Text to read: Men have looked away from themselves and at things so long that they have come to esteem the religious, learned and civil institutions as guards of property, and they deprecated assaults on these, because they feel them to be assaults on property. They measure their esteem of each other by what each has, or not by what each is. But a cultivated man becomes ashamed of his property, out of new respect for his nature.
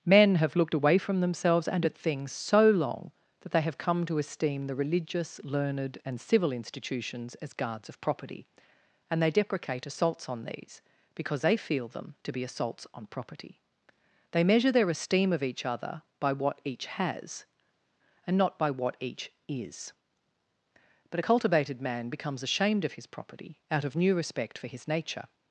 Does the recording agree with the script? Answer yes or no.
no